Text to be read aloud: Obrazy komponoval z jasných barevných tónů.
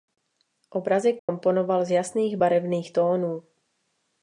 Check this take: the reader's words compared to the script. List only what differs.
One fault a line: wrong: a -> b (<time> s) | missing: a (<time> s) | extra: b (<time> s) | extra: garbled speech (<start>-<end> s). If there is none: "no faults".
no faults